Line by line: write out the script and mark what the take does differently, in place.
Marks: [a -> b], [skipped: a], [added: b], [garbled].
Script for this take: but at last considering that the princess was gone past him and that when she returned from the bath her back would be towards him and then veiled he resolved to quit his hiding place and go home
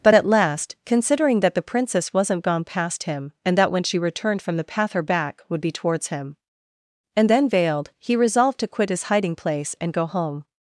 but at last considering that the princess [was -> wasn't] gone past him and that when she returned from the [bath -> path] her back would be towards him and then veiled he resolved to quit his hiding place and go home